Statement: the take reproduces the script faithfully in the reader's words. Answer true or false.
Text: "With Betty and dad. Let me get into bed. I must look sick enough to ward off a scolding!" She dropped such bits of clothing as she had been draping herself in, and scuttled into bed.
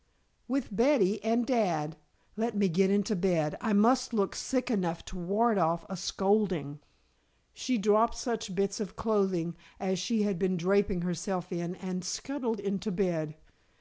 true